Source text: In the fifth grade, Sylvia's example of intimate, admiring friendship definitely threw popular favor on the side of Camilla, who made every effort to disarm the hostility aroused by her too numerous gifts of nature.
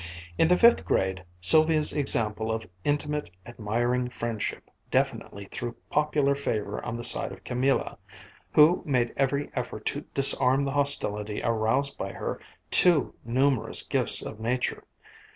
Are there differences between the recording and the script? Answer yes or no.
no